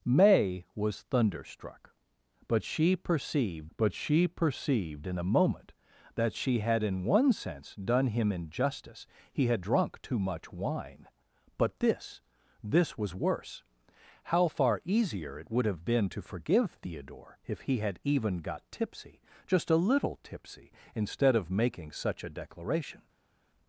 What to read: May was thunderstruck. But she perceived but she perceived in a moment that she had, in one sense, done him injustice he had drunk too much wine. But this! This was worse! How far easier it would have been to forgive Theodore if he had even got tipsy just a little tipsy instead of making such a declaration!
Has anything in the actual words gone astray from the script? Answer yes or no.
no